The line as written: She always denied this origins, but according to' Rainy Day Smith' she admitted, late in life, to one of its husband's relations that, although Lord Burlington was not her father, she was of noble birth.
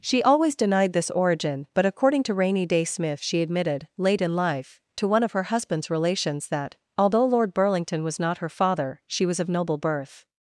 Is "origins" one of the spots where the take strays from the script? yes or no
yes